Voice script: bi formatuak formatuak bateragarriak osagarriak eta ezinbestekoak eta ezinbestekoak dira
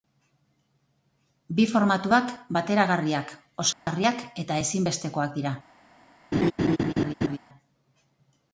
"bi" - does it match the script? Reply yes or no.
yes